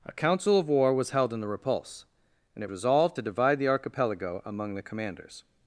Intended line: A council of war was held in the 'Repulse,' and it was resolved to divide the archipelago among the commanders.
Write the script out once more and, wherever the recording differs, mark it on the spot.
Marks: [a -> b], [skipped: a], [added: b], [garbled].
A council of war was held in the 'Repulse,' and it [skipped: was] resolved to divide the archipelago among the commanders.